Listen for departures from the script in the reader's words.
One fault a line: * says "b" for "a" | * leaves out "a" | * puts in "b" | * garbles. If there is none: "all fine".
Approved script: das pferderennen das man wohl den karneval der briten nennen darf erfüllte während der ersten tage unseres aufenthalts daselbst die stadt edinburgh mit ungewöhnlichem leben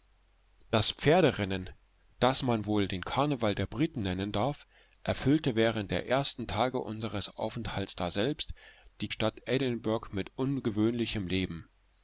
all fine